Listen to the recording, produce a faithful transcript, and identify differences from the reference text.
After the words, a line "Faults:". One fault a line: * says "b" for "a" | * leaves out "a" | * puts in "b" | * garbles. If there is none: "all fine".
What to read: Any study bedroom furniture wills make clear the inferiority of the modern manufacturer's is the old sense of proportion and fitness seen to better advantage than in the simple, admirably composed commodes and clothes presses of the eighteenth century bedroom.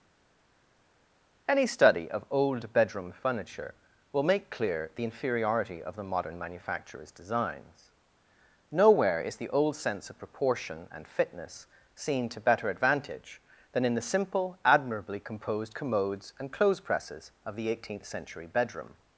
Any study of old bedroom furniture will make clear the inferiority of the modern manufacturer's designs. Nowhere is the old sense of proportion and fitness seen to better advantage than in the simple, admirably composed commodes and clothes presses of the eighteenth century bedroom.
Faults:
* puts in "of old"
* says "will" for "wills"
* puts in "designs Nowhere"